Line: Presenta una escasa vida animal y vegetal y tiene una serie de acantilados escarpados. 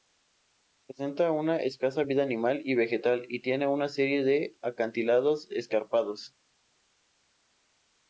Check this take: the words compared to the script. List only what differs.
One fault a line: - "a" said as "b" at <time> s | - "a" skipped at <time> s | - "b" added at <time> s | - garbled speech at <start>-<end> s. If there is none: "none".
none